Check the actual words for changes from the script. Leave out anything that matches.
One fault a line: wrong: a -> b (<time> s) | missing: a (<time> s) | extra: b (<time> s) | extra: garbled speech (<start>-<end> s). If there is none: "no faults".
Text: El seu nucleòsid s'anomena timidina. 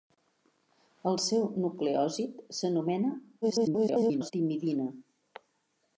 extra: garbled speech (3.4-4.3 s)